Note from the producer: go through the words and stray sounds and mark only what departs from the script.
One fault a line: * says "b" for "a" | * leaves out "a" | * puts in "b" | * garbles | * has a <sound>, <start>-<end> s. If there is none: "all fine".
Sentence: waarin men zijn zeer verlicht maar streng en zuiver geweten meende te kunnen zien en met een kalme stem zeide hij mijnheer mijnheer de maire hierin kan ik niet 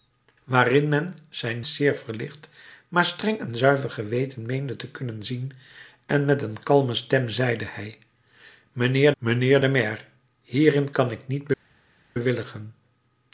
all fine